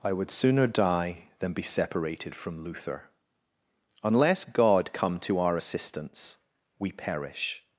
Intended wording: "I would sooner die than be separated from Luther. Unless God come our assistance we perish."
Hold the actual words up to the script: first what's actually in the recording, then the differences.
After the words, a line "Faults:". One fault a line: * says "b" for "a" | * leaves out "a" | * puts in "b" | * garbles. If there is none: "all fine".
"I would sooner die than be separated from Luther. Unless God come to our assistance we perish."
Faults:
* puts in "to"